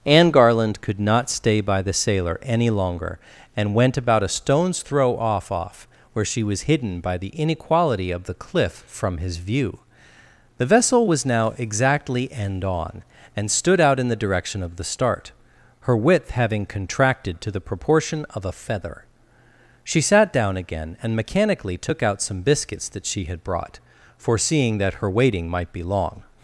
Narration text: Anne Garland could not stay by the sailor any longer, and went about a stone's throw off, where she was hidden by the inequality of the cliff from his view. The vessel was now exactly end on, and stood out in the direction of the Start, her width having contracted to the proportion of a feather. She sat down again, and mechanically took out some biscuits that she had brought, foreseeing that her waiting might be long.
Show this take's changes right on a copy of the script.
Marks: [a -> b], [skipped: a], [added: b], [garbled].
Anne Garland could not stay by the sailor any longer, and went about a stone's throw off, [added: off] where she was hidden by the inequality of the cliff from his view. The vessel was now exactly end on, and stood out in the direction of the Start, her width having contracted to the proportion of a feather. She sat down again, and mechanically took out some biscuits that she had brought, foreseeing that her waiting might be long.